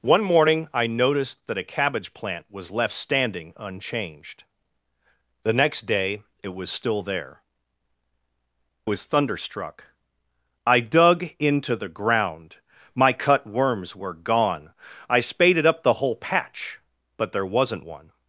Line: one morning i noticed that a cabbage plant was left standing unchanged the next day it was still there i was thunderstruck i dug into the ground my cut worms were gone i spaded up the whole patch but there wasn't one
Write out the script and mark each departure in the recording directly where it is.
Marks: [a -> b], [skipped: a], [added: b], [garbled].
one morning i noticed that a cabbage plant was left standing unchanged the next day it was still there [skipped: i] was thunderstruck i dug into the ground my cut worms were gone i spaded up the whole patch but there wasn't one